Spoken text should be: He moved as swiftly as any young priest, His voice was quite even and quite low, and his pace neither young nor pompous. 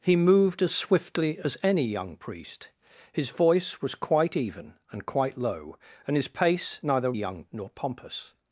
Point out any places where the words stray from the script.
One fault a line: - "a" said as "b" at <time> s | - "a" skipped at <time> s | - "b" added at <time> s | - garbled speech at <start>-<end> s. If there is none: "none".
none